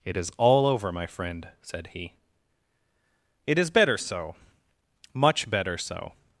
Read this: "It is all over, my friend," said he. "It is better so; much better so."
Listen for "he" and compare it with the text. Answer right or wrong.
right